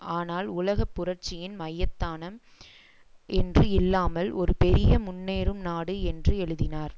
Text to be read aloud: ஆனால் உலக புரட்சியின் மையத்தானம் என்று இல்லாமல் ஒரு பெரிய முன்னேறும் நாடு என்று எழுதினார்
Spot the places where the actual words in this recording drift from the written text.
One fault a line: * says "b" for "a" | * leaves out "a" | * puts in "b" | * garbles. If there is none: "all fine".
all fine